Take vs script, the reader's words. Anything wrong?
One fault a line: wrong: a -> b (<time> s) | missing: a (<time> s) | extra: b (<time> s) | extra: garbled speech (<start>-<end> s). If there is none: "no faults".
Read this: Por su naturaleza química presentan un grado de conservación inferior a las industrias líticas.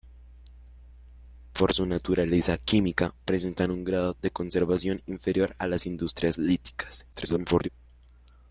extra: garbled speech (7.1-7.7 s)